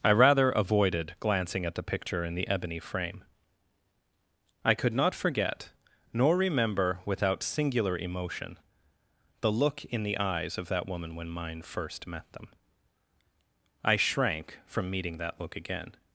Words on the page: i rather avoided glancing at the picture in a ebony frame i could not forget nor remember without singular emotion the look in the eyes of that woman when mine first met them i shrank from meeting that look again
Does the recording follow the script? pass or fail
fail